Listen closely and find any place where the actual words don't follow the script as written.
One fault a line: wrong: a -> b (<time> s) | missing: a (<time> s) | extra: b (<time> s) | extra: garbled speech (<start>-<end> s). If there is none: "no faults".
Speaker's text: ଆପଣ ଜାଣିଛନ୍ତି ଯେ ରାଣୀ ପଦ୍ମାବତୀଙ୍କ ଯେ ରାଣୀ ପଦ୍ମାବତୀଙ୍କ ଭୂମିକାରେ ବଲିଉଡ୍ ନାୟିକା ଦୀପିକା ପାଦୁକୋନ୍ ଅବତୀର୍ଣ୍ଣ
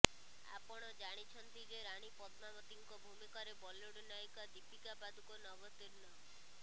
missing: ଯେ ରାଣୀ ପଦ୍ମାବତୀଙ୍କ (3.0 s)